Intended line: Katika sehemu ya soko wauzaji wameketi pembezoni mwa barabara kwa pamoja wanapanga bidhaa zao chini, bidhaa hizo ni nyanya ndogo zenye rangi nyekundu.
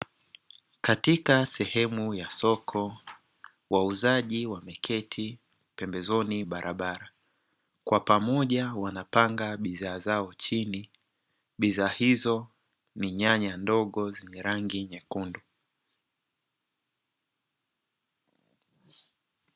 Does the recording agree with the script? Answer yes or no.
no